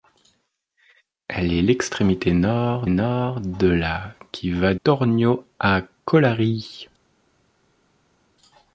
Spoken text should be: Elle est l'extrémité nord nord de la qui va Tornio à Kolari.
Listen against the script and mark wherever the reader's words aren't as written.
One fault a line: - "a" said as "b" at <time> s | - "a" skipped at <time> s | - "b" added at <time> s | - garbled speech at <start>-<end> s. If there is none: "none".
none